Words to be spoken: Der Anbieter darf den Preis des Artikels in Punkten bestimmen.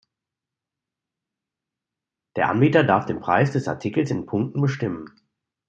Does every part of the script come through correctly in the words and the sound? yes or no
yes